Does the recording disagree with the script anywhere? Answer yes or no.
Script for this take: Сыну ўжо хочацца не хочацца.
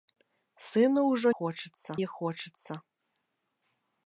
no